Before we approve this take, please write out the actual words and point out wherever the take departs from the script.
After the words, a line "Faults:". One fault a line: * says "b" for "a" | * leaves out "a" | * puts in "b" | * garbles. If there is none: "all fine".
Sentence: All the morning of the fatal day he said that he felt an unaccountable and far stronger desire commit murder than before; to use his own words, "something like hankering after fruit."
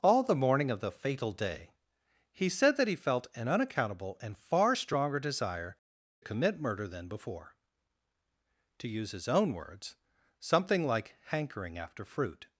All the morning of the fatal day he said that he felt an unaccountable and far stronger desire commit murder than before; to use his own words, "something like hankering after fruit."
Faults:
all fine